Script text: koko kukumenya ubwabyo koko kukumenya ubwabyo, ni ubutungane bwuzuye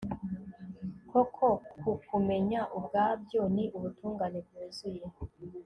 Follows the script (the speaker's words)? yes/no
no